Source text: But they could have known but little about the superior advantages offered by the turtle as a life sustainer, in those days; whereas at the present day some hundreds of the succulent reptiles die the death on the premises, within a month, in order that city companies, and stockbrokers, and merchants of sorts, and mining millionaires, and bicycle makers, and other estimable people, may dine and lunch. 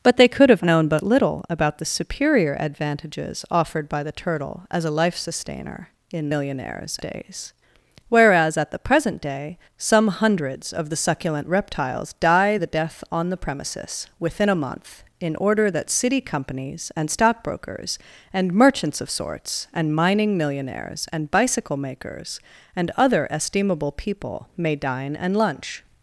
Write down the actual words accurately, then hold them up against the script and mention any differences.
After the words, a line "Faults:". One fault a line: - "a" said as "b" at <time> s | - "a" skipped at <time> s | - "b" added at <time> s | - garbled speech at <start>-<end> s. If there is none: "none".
But they could have known but little about the superior advantages offered by the turtle as a life sustainer, in millionaires days; whereas at the present day some hundreds of the succulent reptiles die the death on the premises, within a month, in order that city companies, and stockbrokers, and merchants of sorts, and mining millionaires, and bicycle makers, and other estimable people, may dine and lunch.
Faults:
- "those" said as "millionaires" at 6.3 s